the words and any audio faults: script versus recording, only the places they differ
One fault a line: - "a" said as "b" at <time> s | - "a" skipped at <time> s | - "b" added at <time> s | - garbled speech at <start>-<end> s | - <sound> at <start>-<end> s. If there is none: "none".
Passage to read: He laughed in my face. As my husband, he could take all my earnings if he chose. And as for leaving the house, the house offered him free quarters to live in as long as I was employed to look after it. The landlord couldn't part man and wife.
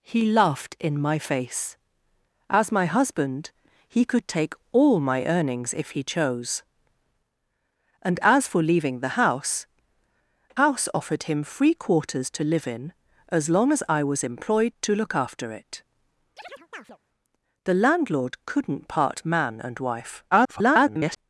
- "the" skipped at 9.7 s
- chirp at 16.4-17.0 s
- garbled speech at 20.3-21.2 s